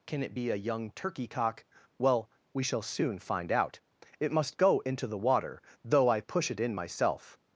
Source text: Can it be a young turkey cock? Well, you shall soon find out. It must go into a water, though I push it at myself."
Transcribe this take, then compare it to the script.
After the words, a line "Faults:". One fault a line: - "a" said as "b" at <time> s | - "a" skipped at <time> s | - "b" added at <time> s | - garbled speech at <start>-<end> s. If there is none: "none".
Can it be a young turkey cock? Well, we shall soon find out. It must go into the water, though I push it in myself."
Faults:
- "you" said as "we" at 2.5 s
- "a" said as "the" at 5.1 s
- "at" said as "in" at 6.6 s